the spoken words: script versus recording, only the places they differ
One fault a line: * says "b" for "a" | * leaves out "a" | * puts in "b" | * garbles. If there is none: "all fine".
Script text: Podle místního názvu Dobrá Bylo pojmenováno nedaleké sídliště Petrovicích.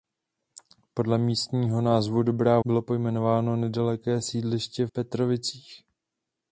all fine